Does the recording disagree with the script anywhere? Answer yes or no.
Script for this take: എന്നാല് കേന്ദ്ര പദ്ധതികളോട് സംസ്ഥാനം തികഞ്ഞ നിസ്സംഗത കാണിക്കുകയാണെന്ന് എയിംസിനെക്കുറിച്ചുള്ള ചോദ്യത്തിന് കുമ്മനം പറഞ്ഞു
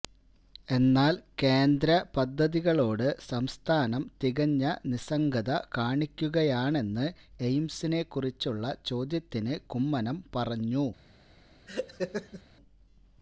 no